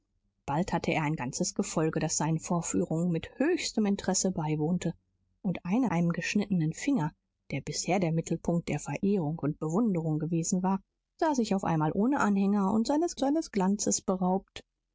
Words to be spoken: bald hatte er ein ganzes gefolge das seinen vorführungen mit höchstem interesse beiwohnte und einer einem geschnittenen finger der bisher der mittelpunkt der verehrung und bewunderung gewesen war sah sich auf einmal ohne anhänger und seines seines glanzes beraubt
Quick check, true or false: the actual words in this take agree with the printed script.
true